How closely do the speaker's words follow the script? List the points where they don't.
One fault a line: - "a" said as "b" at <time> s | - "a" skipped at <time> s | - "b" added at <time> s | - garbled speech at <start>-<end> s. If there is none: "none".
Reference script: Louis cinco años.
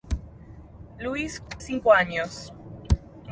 none